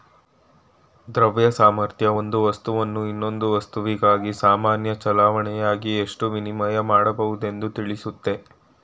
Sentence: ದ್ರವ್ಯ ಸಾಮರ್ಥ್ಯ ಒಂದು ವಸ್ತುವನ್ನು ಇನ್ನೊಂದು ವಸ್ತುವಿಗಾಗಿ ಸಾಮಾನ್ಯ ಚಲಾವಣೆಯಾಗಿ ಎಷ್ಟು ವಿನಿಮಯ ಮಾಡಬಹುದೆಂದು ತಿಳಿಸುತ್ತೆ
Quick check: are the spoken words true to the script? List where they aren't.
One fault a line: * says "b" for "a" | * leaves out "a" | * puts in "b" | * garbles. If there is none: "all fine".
all fine